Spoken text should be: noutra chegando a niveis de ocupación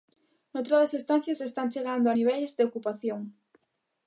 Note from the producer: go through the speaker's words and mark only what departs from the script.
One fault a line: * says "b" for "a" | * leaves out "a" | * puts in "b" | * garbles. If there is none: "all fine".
* puts in "das estancias están"